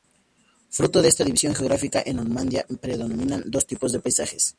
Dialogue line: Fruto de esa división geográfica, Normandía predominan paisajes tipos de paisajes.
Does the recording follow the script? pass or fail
fail